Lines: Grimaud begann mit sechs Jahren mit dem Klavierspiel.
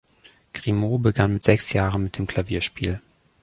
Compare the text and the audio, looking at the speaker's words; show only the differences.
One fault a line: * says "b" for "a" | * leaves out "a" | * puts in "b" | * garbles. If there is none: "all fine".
all fine